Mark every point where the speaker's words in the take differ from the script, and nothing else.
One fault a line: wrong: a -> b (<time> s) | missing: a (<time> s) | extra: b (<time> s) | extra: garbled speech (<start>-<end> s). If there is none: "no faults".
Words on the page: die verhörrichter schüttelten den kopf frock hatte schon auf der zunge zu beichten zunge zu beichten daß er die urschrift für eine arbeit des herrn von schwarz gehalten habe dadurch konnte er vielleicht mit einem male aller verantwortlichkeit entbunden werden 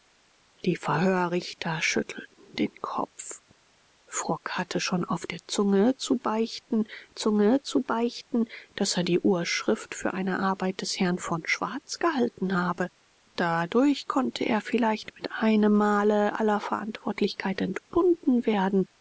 no faults